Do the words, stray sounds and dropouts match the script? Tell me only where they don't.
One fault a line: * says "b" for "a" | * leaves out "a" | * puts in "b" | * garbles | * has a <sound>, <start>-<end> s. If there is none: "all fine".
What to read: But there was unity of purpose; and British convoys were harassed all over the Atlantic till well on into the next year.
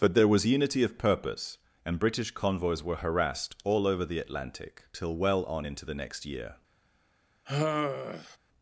* has a sigh, 7.5-8.4 s